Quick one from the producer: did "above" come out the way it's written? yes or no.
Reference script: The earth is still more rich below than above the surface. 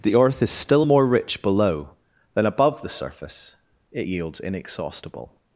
yes